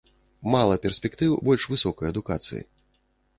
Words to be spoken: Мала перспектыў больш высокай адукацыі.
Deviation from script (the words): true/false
false